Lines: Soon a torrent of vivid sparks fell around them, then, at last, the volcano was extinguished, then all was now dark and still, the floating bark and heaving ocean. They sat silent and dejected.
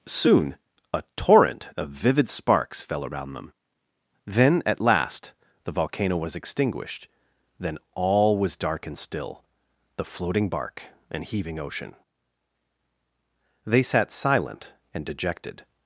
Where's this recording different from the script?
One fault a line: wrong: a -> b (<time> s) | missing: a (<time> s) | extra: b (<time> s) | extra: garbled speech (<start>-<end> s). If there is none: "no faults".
missing: now (8.6 s)